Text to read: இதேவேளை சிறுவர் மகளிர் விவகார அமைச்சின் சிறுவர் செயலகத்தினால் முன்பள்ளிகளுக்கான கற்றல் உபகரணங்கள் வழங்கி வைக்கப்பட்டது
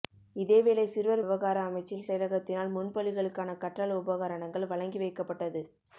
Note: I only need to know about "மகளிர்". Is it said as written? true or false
false